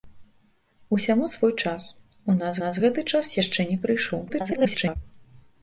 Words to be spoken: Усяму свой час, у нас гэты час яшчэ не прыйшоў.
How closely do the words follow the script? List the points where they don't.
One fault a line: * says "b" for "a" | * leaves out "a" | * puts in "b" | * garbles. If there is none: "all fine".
* puts in "нас"
* garbles